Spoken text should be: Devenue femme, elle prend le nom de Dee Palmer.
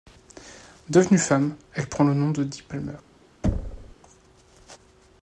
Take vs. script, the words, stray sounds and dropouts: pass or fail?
fail